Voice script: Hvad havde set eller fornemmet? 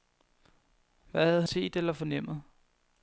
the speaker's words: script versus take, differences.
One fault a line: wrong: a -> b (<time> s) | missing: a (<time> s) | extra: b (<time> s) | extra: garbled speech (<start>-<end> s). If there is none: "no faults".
no faults